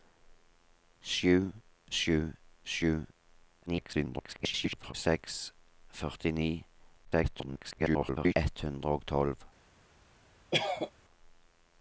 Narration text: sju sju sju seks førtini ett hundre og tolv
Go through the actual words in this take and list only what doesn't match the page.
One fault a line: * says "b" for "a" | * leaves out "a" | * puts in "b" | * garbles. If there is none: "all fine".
* garbles
* garbles